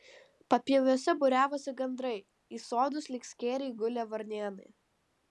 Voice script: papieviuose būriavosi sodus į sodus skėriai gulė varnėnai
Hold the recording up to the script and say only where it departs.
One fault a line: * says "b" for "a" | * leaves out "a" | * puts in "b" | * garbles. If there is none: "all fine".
* says "gandrai" for "sodus"
* puts in "lyg"